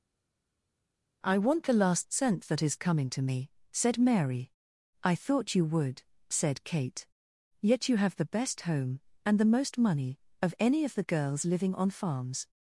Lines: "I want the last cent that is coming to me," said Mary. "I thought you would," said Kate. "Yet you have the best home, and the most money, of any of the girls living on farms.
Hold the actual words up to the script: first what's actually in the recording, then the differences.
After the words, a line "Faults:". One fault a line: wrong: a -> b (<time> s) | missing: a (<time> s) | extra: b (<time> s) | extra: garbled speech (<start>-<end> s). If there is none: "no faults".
"I want the last cent that is coming to me," said Mary. "I thought you would," said Kate. "Yet you have the best home, and the most money, of any of the girls living on farms.
Faults:
no faults